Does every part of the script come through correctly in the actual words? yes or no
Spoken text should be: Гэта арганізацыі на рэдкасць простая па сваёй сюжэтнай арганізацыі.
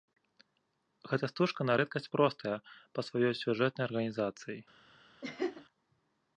no